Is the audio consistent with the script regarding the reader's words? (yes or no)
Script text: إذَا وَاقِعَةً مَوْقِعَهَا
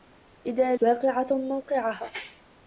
yes